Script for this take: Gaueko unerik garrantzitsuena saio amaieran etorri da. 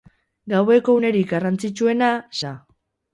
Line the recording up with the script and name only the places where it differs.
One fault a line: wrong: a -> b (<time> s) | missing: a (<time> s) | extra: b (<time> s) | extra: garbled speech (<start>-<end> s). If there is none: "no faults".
missing: saio amaieran etorri (2.1 s)